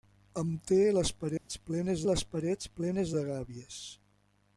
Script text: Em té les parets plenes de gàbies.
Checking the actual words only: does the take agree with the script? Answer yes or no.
no